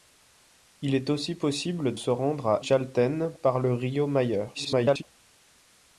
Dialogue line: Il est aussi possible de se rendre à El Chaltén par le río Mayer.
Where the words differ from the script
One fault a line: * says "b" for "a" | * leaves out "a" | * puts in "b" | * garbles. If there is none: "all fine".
* leaves out "de"
* leaves out "El"
* garbles